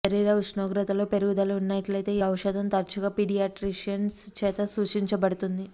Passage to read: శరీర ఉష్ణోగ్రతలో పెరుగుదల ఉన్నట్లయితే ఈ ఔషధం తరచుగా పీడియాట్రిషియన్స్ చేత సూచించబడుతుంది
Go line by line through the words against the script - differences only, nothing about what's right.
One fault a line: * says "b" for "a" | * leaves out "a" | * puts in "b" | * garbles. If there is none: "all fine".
all fine